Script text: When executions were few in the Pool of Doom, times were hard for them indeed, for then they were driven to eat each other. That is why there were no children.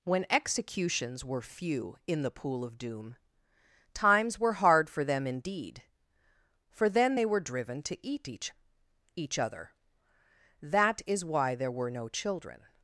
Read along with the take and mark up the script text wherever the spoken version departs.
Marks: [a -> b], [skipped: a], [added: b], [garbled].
When executions were few in the Pool of Doom, times were hard for them indeed, for then they were driven to eat each [added: each] other. That is why there were no children.